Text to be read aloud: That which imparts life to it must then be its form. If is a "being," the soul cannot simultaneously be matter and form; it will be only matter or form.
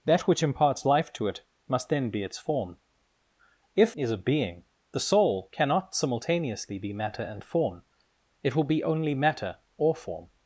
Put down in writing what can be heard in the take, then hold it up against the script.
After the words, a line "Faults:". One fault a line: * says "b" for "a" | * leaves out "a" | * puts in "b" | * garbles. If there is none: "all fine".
That which imparts life to it must then be its form. If is a "being," the soul cannot simultaneously be matter and form; it will be only matter or form.
Faults:
all fine